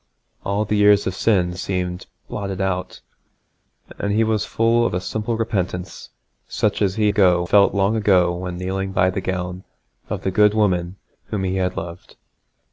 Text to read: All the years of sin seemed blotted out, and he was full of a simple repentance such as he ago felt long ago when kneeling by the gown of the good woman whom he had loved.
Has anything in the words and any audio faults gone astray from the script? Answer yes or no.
no